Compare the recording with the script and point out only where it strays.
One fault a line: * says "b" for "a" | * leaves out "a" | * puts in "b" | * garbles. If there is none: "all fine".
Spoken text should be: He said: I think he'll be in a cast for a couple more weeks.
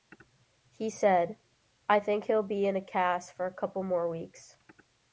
all fine